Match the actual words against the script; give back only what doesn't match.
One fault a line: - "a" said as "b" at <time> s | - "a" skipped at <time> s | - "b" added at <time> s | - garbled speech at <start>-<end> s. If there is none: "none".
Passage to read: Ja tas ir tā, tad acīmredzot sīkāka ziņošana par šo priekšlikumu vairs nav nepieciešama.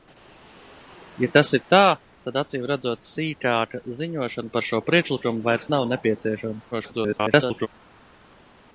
- garbled speech at 6.7-7.7 s